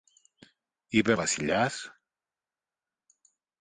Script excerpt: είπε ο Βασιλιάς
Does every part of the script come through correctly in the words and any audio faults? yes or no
yes